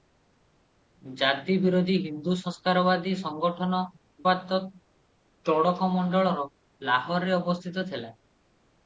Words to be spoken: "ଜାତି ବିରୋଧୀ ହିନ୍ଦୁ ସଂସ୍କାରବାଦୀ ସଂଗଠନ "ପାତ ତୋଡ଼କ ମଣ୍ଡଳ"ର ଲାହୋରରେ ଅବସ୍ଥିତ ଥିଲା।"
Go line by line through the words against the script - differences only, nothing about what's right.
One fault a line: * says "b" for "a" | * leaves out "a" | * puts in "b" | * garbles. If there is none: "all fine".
all fine